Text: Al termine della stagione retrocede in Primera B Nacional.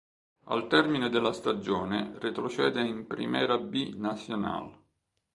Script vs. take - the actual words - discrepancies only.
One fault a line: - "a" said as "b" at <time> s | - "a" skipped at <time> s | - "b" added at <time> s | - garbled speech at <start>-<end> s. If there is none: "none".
none